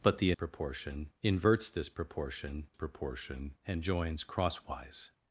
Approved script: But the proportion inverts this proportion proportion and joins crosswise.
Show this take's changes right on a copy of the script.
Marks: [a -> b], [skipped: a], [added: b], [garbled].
But the proportion inverts this proportion proportion and joins crosswise.